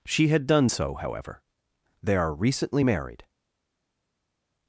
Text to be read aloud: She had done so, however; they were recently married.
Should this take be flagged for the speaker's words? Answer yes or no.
yes